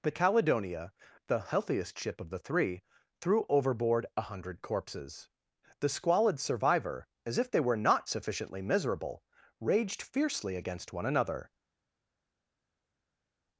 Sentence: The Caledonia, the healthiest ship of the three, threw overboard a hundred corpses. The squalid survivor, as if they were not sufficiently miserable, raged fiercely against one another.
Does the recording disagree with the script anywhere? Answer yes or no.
no